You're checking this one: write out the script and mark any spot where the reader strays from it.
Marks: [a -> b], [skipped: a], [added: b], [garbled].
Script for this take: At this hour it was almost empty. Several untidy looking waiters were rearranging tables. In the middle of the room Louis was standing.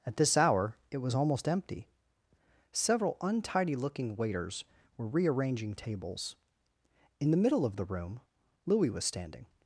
At this hour it was almost empty. Several untidy looking waiters were rearranging tables. In the middle of the room Louis was standing.